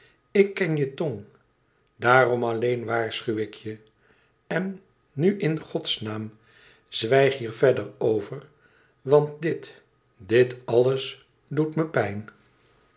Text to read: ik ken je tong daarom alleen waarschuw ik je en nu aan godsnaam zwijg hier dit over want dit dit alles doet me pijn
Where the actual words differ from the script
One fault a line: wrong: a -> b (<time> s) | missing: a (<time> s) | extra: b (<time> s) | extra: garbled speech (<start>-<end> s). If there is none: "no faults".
wrong: aan -> in (5.4 s)
wrong: dit -> verder (7.5 s)